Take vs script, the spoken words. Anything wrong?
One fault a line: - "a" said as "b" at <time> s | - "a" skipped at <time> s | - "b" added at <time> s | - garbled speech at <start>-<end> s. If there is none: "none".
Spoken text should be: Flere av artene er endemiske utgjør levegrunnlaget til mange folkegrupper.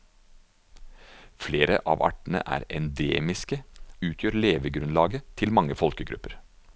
none